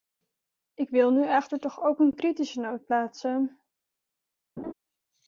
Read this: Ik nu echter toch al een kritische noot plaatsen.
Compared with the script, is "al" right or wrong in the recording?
wrong